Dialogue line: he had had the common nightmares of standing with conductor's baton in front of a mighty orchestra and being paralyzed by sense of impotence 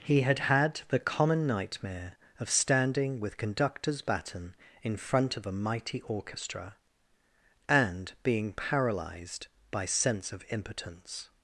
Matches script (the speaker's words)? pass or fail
fail